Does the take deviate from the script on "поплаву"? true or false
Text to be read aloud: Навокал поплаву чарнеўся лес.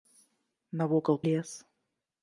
true